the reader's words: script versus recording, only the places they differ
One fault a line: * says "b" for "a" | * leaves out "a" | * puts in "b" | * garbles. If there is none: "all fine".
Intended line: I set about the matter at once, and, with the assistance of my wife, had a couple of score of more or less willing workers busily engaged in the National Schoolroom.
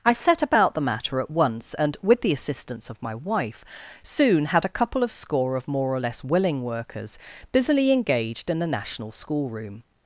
* puts in "soon"